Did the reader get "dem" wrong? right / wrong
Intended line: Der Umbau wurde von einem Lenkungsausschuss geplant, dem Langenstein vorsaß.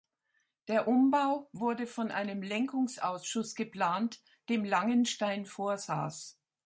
right